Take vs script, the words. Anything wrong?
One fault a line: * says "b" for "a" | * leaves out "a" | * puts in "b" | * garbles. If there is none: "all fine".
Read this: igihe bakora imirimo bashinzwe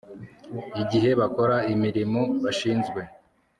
all fine